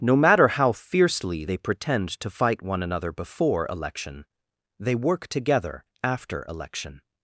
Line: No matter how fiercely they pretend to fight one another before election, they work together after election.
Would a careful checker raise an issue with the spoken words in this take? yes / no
no